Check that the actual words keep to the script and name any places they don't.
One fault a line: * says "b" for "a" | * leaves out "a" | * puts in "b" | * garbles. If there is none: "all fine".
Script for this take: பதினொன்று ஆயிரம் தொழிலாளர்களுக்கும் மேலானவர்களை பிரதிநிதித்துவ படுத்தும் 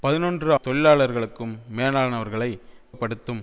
* leaves out "ஆயிரம்"
* leaves out "பிரதிநிதித்துவ"